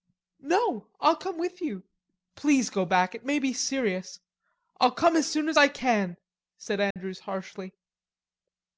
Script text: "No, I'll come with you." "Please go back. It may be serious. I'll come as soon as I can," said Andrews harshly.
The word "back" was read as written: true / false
true